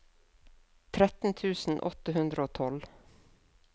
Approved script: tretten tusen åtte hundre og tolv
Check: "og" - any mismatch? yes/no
no